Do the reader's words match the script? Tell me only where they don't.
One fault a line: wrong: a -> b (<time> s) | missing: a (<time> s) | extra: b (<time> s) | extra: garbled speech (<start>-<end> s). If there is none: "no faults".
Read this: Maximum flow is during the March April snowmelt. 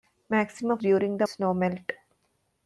missing: flow is (0.8 s)
missing: March April (1.3 s)